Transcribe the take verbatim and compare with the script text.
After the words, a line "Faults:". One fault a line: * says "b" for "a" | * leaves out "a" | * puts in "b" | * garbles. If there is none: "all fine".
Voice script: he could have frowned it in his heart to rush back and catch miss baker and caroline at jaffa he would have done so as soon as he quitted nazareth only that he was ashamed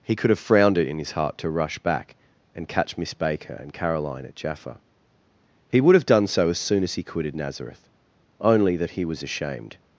he could have frowned it in his heart to rush back and catch miss baker and caroline at jaffa he would have done so as soon as he quitted nazareth only that he was ashamed
Faults:
all fine